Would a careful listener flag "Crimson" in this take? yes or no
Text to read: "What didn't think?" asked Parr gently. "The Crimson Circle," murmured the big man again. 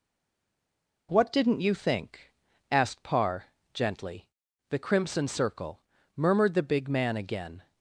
no